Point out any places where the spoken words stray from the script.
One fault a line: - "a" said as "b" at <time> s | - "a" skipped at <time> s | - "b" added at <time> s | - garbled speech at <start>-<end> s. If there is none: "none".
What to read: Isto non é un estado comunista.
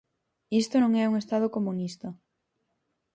none